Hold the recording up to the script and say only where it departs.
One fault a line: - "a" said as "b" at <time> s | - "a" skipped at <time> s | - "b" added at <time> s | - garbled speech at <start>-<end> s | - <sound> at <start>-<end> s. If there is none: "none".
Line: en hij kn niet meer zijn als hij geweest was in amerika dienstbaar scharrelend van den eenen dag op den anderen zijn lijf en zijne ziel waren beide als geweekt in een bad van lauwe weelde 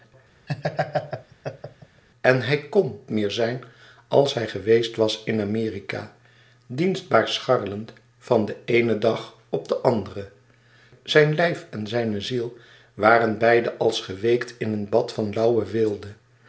- laugh at 0.5-2.0 s
- "niet" skipped at 3.0 s